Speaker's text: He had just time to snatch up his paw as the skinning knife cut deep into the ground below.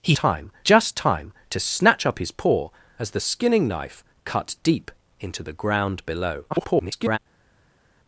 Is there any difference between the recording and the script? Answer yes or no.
yes